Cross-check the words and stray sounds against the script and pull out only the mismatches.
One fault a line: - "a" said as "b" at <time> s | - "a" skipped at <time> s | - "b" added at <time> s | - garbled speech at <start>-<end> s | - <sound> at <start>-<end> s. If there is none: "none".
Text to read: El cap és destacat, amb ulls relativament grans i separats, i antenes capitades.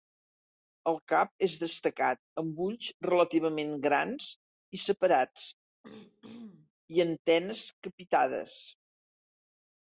- throat clearing at 5.8-6.7 s